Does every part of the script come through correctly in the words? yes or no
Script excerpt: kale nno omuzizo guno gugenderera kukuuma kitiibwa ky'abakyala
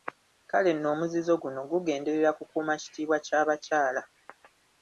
yes